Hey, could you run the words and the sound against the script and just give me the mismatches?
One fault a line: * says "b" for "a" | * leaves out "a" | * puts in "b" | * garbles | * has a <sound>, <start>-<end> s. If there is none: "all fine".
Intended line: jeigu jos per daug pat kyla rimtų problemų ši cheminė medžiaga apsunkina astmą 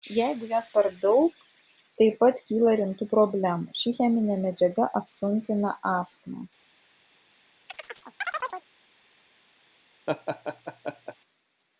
* puts in "taip"
* has a chirp, 7.7-8.7 s
* has a laugh, 10.1-11.2 s